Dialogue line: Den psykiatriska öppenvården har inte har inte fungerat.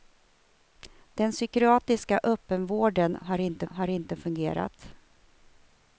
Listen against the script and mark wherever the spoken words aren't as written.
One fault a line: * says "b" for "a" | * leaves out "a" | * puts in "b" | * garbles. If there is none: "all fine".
all fine